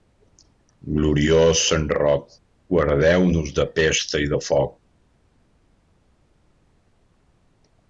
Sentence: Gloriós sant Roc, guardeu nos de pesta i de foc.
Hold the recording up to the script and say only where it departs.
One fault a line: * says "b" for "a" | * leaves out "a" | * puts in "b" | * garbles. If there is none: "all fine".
all fine